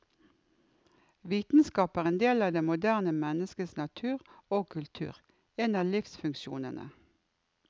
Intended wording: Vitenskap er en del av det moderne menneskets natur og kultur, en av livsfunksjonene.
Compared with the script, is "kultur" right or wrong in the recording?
right